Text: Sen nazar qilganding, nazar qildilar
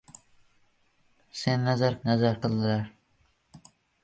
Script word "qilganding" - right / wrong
wrong